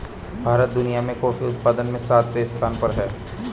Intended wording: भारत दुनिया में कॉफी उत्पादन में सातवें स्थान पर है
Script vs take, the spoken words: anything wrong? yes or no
no